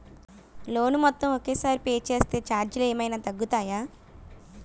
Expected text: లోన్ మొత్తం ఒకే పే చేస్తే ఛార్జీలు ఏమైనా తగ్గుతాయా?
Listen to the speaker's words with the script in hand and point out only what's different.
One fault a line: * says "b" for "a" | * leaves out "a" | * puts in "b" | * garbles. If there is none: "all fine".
* puts in "సారి"